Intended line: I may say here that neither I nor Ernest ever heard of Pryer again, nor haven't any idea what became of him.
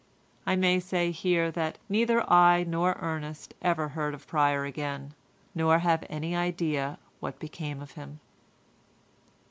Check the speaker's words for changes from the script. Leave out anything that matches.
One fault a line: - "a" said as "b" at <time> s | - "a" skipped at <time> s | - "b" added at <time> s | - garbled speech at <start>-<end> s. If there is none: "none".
- "haven't" said as "have" at 5.8 s